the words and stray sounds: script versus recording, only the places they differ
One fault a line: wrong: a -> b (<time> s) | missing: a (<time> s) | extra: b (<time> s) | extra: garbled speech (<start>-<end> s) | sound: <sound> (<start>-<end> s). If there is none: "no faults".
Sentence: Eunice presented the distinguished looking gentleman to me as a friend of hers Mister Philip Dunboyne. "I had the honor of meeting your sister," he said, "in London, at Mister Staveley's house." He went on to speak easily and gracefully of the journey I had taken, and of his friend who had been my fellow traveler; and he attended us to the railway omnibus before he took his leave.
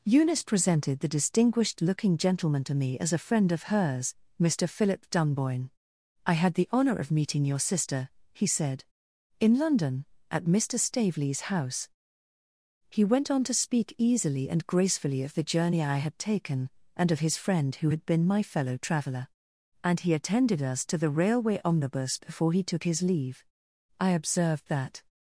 extra: I observed that (24.0 s)